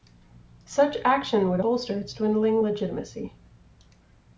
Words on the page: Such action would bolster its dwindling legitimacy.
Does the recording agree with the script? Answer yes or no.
yes